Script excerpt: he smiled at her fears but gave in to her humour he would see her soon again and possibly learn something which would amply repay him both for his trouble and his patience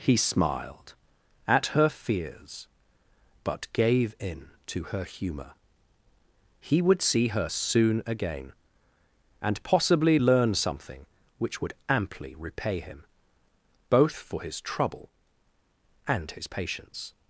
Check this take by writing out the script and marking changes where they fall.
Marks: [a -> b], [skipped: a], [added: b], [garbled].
he smiled at her fears but gave in to her humour he would see her soon again and possibly learn something which would amply repay him both for his trouble and his patience